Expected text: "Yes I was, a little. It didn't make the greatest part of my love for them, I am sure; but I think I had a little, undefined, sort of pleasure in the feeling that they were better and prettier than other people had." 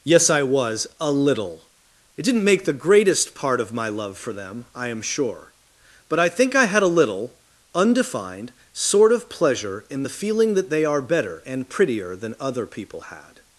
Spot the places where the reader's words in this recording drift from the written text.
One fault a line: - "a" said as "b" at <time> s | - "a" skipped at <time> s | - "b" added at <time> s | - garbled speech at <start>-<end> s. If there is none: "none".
- "were" said as "are" at 10.9 s